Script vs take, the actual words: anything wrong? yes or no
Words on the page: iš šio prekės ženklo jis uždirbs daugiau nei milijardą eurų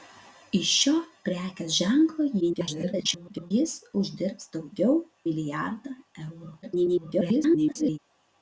yes